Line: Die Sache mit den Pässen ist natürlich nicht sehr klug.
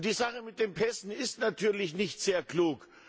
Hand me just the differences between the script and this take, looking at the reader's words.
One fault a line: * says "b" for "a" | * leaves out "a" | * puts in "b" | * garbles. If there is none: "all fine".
all fine